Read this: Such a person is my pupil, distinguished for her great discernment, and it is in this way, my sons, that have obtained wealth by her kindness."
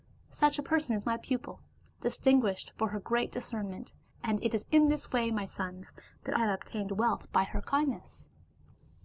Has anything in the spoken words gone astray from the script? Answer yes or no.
no